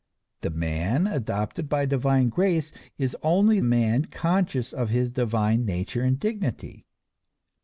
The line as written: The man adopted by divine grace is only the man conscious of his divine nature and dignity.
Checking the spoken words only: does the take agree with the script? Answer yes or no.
no